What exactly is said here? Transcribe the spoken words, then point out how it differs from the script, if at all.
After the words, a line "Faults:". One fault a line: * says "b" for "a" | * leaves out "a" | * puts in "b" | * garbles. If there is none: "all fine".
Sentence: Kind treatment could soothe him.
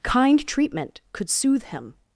Kind treatment could soothe him.
Faults:
all fine